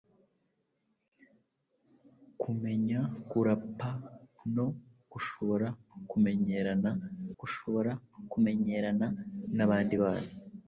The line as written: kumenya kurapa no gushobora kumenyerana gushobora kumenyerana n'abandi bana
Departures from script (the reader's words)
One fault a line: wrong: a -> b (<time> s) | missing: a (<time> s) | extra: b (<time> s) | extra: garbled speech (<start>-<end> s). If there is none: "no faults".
no faults